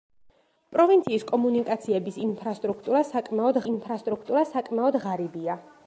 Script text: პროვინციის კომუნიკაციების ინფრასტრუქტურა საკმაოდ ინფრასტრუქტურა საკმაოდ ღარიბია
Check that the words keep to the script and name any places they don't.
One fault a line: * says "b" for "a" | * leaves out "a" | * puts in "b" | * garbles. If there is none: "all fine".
all fine